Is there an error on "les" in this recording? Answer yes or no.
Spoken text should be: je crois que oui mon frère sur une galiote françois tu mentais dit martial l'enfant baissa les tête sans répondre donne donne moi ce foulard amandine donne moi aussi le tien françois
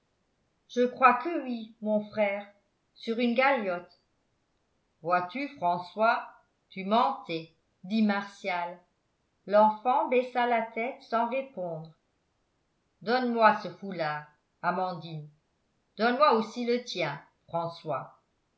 yes